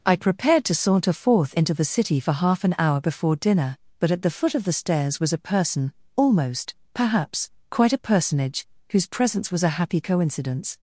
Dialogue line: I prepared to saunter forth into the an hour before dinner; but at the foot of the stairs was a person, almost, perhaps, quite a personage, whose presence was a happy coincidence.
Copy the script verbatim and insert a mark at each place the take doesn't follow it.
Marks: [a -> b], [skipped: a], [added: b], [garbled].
I prepared to saunter forth into the [added: city for half] an hour before dinner; but at the foot of the stairs was a person, almost, perhaps, quite a personage, whose presence was a happy coincidence.